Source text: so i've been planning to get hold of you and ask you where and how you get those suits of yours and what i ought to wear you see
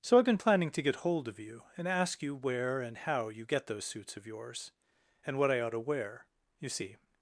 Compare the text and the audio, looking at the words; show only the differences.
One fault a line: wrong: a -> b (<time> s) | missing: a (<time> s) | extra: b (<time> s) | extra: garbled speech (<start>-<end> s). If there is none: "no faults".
no faults